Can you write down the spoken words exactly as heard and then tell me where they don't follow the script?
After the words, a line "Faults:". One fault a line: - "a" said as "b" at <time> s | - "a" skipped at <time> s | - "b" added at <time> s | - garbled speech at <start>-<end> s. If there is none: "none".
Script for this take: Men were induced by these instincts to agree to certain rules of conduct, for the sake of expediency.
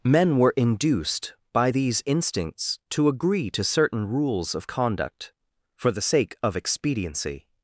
Men were induced by these instincts to agree to certain rules of conduct, for the sake of expediency.
Faults:
none